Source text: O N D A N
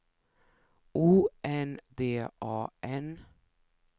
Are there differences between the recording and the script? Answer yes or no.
no